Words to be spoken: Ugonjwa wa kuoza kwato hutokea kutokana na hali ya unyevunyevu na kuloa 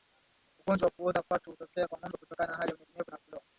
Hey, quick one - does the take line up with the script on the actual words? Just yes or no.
no